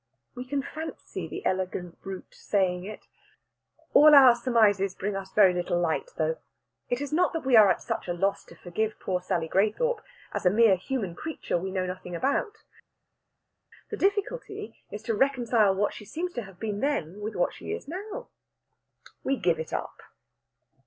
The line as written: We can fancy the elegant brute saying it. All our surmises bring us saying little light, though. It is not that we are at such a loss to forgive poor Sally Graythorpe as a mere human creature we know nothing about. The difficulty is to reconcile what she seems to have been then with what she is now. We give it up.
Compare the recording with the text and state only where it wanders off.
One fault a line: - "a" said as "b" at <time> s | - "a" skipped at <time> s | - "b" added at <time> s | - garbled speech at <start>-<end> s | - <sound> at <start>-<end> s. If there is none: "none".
- "saying" said as "very" at 5.3 s